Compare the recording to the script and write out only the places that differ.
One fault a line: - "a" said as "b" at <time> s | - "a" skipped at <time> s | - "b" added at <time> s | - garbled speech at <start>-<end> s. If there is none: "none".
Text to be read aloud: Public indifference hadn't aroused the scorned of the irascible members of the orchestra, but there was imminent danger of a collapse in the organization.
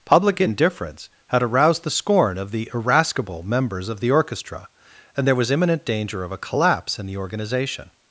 - "hadn't" said as "had" at 1.3 s
- "scorned" said as "scorn" at 1.9 s
- "but" said as "and" at 5.2 s